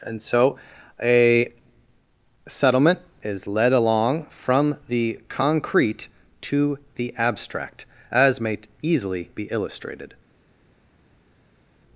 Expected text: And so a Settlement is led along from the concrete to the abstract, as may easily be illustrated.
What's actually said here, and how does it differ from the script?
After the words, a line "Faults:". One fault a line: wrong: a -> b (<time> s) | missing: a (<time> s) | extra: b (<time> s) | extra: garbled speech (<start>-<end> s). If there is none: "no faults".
And so a Settlement is led along from the concrete to the abstract, as may easily be illustrated.
Faults:
no faults